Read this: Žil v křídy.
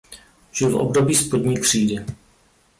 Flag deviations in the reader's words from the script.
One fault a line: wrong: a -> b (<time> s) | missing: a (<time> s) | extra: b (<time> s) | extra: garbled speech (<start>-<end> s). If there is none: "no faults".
extra: období spodní (0.8 s)